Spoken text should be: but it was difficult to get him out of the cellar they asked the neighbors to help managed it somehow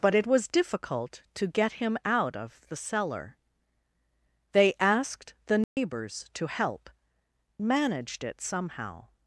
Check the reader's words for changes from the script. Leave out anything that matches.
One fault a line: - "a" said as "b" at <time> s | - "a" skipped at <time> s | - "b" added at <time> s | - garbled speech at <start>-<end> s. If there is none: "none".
none